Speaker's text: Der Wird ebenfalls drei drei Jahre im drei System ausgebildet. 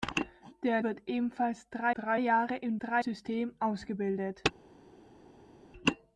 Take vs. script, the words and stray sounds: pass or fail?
pass